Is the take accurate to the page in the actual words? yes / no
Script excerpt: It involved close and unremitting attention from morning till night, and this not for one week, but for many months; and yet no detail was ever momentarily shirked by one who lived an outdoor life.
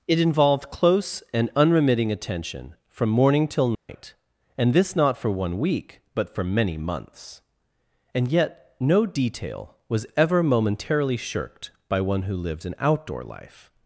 yes